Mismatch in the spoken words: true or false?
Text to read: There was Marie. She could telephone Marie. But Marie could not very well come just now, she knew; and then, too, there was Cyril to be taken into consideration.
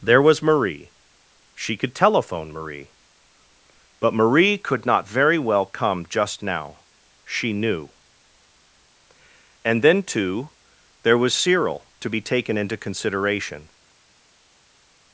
false